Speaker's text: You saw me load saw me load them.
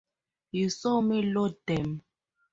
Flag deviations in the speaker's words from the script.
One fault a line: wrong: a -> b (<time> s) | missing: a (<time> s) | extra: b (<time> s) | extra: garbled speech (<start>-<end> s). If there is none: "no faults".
missing: saw me load (1.6 s)